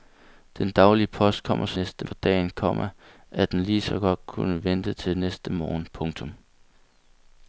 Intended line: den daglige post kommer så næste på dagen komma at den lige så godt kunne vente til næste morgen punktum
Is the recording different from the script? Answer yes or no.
no